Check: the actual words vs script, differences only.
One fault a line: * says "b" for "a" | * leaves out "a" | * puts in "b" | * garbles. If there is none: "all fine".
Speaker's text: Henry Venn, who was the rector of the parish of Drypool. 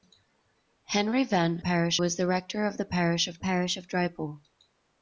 * says "parish" for "who"
* puts in "parish of"